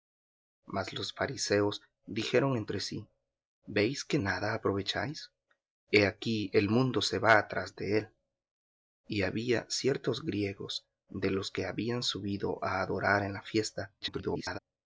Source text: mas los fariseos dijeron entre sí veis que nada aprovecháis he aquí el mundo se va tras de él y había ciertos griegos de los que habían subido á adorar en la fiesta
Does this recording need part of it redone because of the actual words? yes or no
yes